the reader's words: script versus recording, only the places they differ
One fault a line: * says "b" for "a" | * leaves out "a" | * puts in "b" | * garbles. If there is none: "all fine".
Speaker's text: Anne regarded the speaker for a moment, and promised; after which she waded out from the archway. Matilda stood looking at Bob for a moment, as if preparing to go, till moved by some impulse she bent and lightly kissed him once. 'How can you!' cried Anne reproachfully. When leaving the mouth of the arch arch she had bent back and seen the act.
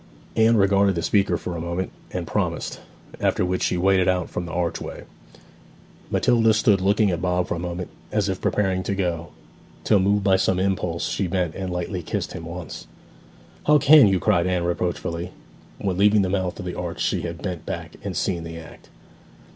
* leaves out "arch"